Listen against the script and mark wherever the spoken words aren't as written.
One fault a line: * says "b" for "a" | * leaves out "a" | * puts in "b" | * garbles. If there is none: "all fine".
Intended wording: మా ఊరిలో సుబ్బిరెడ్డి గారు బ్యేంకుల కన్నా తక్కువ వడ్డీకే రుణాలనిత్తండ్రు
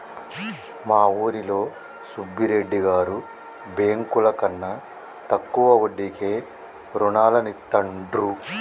all fine